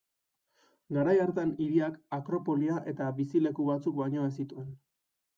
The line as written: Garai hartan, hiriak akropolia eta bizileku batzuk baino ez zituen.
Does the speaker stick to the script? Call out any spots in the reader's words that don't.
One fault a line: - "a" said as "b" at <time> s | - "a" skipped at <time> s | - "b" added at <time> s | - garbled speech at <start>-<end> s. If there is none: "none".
none